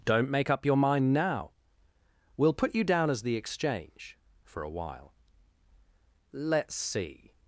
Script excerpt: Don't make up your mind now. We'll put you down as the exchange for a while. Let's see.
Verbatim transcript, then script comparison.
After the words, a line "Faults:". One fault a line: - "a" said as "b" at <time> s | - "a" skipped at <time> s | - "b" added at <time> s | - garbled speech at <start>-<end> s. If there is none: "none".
Don't make up your mind now. We'll put you down as the exchange for a while. Let's see.
Faults:
none